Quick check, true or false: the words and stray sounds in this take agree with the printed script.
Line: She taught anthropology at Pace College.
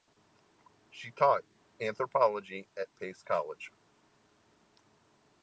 true